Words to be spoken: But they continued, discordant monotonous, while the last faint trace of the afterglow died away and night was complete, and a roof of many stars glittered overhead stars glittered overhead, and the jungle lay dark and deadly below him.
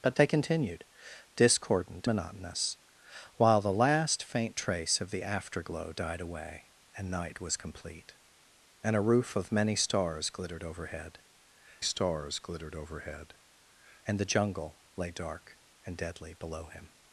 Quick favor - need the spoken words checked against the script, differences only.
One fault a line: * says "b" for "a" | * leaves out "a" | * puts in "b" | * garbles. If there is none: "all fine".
all fine